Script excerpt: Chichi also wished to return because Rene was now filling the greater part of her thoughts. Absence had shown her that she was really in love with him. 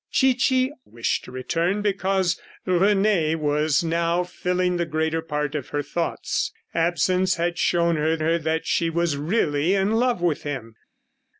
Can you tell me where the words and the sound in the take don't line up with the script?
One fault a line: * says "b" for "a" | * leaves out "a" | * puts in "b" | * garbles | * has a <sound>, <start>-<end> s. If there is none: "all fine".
* leaves out "also"
* puts in "her"